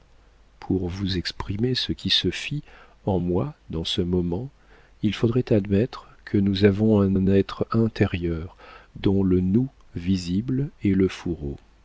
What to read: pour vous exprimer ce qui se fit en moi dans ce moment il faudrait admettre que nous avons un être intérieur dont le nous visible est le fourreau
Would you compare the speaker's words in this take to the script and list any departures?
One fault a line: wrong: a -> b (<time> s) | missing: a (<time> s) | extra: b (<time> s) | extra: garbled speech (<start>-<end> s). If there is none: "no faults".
extra: un (7.1 s)